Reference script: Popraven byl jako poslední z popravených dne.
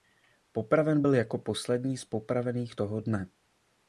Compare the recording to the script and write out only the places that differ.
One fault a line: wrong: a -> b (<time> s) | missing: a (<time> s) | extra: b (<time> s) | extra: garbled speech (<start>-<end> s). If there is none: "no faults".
extra: toho (2.7 s)